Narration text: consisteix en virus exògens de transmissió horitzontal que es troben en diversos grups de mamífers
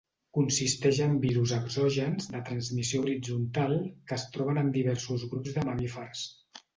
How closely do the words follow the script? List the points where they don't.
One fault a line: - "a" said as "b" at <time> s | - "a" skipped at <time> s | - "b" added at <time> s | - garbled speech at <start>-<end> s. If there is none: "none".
none